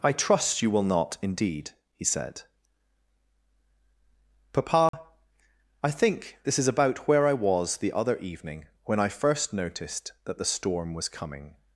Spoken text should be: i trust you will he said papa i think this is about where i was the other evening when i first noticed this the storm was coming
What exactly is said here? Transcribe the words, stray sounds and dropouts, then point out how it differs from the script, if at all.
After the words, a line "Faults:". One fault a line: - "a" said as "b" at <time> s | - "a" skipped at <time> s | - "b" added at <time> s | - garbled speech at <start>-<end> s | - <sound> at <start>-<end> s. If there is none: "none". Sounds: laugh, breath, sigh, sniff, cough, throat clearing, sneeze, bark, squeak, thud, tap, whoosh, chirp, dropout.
i trust you will not indeed he said papa i think this is about where i was the other evening when i first noticed that the storm was coming
Faults:
- "not indeed" added at 0.8 s
- dropout at 4.9-4.9 s
- "this" said as "that" at 10.2 s